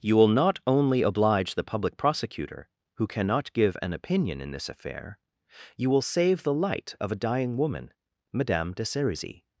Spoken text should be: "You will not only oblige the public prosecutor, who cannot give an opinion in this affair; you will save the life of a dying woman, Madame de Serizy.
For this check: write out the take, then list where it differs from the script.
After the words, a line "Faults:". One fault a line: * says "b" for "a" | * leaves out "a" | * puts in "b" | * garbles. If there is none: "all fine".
"You will not only oblige the public prosecutor, who cannot give an opinion in this affair; you will save the light of a dying woman, Madame de Serizy.
Faults:
* says "light" for "life"